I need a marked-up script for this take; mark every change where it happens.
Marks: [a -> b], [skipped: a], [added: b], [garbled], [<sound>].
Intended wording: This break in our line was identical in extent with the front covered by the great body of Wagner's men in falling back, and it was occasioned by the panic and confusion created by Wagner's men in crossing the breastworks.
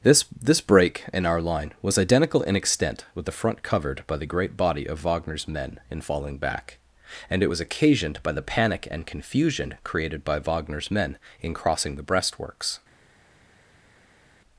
This [added: this] break in our line was identical in extent with the front covered by the great body of Wagner's men in falling back, and it was occasioned by the panic and confusion created by Wagner's men in crossing the breastworks.